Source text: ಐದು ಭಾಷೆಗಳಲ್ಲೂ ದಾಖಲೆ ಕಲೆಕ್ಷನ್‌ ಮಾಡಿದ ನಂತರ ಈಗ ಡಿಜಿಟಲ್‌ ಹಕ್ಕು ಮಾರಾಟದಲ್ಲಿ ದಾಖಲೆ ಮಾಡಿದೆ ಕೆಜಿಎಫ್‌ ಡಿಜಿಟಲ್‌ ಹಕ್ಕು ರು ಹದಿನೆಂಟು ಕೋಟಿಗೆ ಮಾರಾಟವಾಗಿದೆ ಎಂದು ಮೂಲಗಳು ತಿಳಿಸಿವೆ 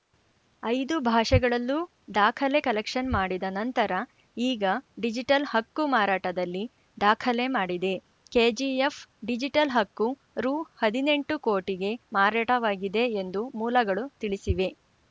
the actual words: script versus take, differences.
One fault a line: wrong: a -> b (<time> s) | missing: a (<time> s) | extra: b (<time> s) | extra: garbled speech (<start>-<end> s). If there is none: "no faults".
no faults